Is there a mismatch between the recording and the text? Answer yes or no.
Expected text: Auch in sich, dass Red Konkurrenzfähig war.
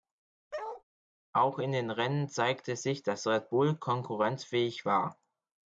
yes